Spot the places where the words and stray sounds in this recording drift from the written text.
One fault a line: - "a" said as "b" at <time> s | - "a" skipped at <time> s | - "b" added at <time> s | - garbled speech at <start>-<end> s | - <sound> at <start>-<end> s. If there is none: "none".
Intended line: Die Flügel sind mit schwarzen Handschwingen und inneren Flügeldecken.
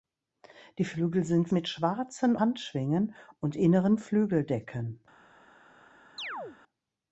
- chirp at 6.2-6.6 s